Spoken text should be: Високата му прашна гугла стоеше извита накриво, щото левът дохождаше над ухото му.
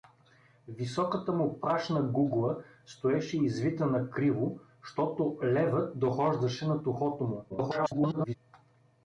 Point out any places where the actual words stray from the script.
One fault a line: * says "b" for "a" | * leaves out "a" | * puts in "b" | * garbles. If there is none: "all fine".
* garbles